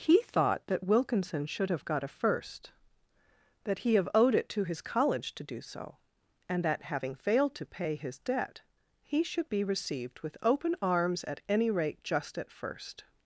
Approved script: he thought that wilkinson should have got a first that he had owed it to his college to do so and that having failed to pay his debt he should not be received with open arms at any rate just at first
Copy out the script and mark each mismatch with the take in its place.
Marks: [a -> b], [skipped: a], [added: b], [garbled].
he thought that wilkinson should have got a first that he [had -> have] owed it to his college to do so and that having failed to pay his debt he should [skipped: not] be received with open arms at any rate just at first